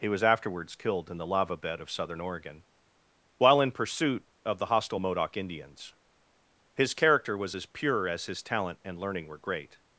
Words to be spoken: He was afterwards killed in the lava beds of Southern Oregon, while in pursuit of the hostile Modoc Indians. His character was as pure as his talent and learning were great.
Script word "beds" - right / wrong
wrong